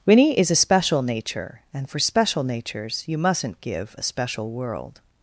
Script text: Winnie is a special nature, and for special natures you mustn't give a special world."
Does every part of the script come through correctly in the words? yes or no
yes